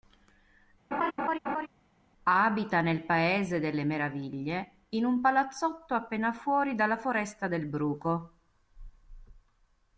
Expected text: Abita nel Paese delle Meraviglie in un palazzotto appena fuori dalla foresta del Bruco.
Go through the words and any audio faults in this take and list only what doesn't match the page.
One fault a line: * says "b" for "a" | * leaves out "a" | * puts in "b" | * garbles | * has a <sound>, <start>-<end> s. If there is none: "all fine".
* has a laugh, 0.9-1.7 s